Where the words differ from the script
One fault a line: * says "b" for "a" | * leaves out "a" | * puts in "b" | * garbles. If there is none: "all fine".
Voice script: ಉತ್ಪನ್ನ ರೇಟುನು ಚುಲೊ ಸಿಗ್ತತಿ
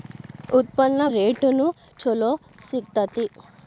all fine